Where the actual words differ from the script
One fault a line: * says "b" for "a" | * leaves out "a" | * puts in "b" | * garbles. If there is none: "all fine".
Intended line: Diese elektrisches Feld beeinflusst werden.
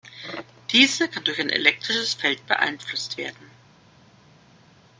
* puts in "kann durch ein"